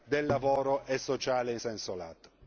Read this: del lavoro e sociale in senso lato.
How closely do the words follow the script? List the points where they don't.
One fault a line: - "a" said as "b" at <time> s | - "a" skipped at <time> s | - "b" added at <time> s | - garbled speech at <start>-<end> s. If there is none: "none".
none